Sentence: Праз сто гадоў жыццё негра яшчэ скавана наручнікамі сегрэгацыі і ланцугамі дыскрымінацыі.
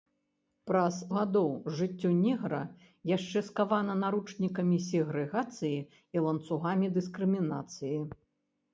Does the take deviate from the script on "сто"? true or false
true